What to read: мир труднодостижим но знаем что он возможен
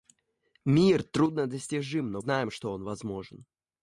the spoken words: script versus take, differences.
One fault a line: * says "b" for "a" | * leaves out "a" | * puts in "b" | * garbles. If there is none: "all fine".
all fine